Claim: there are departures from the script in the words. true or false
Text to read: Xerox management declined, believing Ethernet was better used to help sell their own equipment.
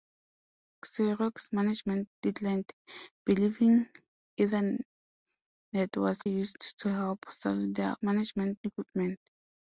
true